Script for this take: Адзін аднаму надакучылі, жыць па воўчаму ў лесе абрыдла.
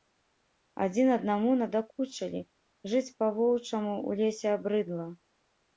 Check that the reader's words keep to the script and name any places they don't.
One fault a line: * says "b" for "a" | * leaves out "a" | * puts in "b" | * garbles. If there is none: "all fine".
all fine